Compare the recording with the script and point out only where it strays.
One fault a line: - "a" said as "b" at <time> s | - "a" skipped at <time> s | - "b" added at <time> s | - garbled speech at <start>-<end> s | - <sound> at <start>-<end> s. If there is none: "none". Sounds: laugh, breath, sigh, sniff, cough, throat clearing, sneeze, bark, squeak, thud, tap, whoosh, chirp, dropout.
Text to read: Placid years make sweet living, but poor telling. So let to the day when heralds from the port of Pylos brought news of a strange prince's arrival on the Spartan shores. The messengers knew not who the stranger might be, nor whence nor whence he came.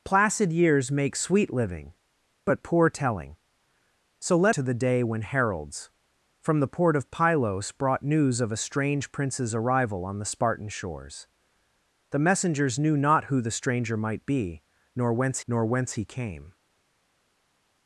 none